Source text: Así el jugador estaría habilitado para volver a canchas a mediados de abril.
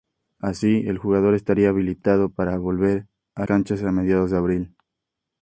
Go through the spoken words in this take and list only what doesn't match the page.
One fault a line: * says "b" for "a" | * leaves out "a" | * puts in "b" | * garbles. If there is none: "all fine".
all fine